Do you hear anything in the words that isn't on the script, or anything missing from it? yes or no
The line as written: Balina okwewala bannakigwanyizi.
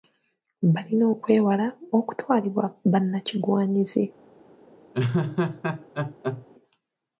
yes